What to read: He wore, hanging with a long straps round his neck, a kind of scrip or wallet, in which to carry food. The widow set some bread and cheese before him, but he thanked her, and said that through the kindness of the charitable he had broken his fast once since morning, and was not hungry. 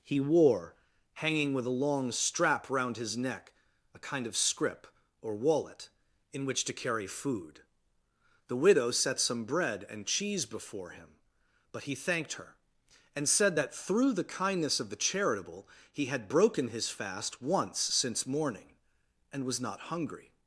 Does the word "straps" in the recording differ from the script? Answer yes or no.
yes